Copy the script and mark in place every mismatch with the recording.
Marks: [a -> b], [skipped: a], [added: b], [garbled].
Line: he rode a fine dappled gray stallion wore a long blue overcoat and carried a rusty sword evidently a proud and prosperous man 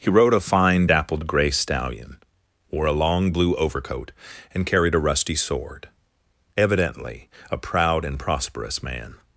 he rode a fine dappled gray stallion wore a long blue overcoat and carried a rusty sword evidently a proud and prosperous man